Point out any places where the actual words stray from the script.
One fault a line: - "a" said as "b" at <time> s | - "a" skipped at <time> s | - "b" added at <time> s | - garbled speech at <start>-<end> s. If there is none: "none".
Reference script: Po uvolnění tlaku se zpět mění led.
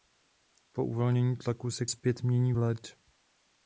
none